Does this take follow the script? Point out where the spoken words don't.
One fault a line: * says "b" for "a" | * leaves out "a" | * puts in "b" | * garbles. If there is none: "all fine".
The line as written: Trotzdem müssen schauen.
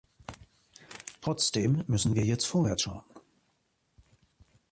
* puts in "wir jetzt vorwärts"